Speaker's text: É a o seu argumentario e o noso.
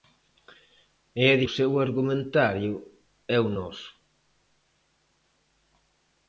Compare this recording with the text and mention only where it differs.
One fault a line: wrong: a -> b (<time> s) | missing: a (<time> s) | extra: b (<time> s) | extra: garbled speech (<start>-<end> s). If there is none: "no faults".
no faults